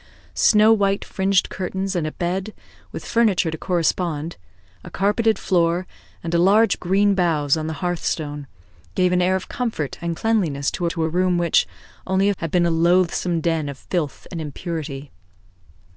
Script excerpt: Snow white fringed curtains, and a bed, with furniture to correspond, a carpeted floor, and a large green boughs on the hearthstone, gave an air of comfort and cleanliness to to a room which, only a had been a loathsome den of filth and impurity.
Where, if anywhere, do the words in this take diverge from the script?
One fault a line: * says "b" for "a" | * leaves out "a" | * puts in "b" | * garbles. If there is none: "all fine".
all fine